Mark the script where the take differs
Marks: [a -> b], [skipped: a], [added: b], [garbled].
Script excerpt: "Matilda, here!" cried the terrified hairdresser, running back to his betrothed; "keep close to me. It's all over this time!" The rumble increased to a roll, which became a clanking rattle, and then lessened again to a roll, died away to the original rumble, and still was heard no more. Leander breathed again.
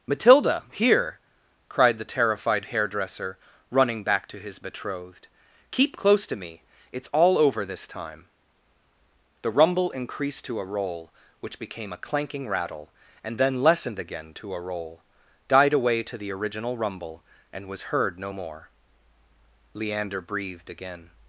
"Matilda, here!" cried the terrified hairdresser, running back to his betrothed; "keep close to me. It's all over this time!" The rumble increased to a roll, which became a clanking rattle, and then lessened again to a roll, died away to the original rumble, and [skipped: still] was heard no more. Leander breathed again.